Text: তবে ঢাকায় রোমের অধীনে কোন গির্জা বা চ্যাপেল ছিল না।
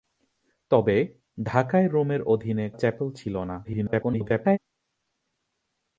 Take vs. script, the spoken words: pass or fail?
fail